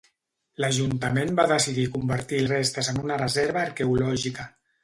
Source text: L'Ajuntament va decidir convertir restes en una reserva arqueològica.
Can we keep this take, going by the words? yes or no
yes